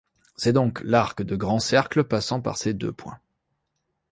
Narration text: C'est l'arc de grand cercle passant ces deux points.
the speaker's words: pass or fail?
fail